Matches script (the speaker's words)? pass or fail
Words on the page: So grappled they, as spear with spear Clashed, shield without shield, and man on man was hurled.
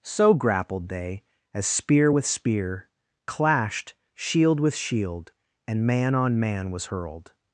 fail